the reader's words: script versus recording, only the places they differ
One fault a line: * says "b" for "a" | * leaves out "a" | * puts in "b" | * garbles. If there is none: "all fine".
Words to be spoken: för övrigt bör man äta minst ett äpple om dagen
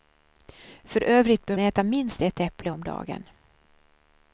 * leaves out "man"